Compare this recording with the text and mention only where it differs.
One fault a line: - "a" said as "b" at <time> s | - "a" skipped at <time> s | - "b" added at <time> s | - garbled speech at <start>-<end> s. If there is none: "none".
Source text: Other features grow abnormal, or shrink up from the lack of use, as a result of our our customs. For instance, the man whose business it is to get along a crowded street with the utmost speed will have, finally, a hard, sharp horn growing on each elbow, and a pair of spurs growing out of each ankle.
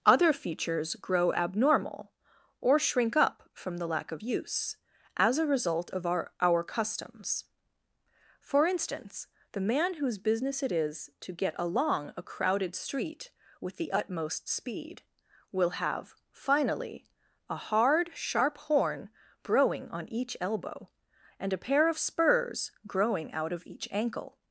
none